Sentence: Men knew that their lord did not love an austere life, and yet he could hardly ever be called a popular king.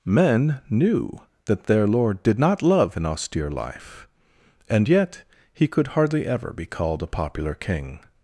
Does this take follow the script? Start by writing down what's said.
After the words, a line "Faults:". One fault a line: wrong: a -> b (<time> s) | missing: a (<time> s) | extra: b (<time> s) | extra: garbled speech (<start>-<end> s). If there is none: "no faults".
Men knew that their lord did not love an austere life, and yet he could hardly ever be called a popular king.
Faults:
no faults